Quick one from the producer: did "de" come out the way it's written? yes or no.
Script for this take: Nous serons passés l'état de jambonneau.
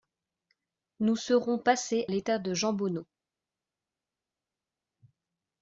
yes